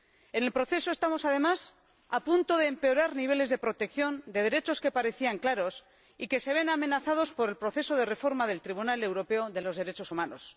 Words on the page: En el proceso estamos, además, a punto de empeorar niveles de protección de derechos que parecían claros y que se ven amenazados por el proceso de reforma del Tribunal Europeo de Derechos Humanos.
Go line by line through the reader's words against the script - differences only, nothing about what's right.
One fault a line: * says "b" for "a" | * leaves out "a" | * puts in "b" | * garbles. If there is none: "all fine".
all fine